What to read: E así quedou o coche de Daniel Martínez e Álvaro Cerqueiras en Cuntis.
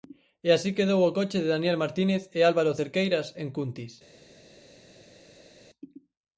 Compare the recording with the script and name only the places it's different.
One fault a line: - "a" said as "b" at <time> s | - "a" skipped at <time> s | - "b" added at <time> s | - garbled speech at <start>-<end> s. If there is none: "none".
none